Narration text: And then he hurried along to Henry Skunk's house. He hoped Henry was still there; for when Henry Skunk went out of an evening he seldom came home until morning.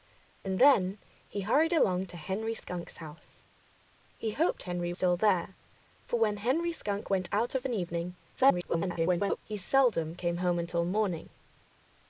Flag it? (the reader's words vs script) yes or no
yes